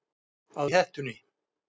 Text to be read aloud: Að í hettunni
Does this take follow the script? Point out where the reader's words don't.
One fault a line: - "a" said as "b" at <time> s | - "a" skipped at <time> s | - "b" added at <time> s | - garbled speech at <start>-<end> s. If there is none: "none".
none